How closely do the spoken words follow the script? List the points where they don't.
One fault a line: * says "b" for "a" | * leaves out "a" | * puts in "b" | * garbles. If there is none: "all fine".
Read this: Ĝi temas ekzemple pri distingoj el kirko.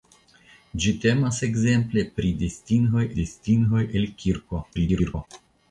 * puts in "distingoj"
* garbles